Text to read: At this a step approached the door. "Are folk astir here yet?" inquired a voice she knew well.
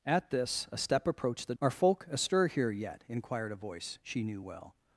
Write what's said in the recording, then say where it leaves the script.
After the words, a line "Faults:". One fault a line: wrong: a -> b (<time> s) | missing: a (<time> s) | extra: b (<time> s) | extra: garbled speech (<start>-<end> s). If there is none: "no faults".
At this a step approached the. "Are folk astir here yet?" inquired a voice she knew well.
Faults:
missing: door (1.5 s)